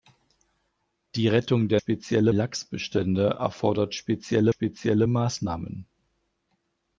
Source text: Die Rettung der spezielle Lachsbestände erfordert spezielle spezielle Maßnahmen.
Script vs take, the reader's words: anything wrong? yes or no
no